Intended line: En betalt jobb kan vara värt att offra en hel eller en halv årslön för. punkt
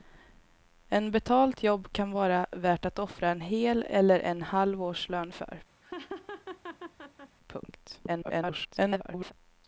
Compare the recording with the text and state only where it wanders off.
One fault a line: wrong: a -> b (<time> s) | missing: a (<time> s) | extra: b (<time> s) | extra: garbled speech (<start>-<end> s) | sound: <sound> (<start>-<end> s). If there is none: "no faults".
sound: laugh (5.8-7.4 s)
extra: garbled speech (8.1-9.3 s)